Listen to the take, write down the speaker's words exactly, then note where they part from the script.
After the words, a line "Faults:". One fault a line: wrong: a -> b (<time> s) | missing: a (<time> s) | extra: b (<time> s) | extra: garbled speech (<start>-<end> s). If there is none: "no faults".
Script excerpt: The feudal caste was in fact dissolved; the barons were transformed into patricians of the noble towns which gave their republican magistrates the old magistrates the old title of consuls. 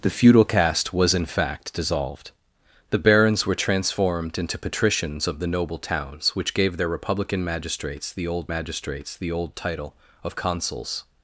The feudal caste was in fact dissolved; the barons were transformed into patricians of the noble towns which gave their republican magistrates the old magistrates the old title of consuls.
Faults:
no faults